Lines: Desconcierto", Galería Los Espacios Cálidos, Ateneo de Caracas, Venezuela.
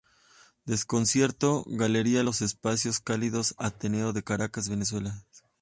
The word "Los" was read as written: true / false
true